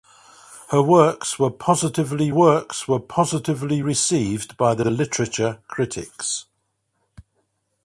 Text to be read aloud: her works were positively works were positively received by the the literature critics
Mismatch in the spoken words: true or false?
false